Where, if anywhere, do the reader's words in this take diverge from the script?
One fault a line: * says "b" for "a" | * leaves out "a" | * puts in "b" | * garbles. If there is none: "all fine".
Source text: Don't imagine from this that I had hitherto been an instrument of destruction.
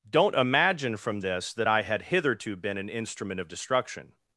all fine